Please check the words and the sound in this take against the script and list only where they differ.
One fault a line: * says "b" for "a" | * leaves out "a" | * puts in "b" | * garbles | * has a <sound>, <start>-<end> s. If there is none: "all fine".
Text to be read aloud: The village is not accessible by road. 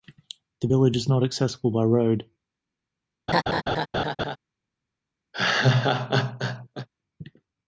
* has a laugh, 3.3-4.4 s
* has a laugh, 5.3-6.9 s